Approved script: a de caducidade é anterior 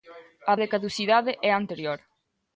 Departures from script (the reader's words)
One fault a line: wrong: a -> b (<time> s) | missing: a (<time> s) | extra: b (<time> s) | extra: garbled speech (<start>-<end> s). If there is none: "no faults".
no faults